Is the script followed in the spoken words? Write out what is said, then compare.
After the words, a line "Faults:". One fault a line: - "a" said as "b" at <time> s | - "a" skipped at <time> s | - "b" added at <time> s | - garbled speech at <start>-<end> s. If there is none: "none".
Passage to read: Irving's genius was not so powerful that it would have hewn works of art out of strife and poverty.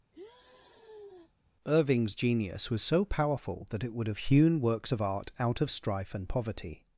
Irving's genius was so powerful that it would have hewn works of art out of strife and poverty.
Faults:
- "not" skipped at 2.8 s